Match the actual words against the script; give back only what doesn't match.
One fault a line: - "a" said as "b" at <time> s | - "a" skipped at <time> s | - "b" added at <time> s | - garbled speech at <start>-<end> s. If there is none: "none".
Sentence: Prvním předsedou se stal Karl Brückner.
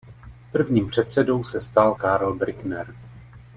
none